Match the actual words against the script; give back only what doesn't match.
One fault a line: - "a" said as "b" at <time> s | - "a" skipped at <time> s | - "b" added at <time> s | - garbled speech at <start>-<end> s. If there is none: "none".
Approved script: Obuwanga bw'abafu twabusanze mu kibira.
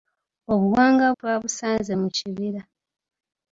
- "bw'abafu" skipped at 1.1 s